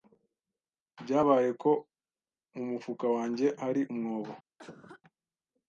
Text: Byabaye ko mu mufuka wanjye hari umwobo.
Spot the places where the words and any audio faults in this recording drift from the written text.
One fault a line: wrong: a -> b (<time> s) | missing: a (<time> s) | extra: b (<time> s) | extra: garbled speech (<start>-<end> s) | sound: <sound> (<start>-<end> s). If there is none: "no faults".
sound: cough (4.6-5.0 s)